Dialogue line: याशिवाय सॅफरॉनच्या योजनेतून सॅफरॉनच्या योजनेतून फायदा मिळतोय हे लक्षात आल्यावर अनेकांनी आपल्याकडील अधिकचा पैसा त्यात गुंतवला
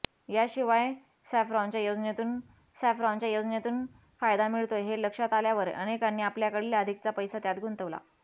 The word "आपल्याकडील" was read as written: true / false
true